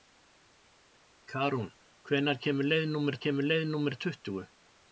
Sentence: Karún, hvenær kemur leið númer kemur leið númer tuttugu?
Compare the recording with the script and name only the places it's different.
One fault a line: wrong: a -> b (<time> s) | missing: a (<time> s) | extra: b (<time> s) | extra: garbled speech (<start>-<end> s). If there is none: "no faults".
no faults